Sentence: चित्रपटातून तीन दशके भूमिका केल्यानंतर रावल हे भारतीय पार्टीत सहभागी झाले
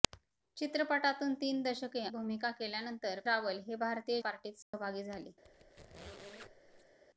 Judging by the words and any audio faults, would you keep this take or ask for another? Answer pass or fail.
fail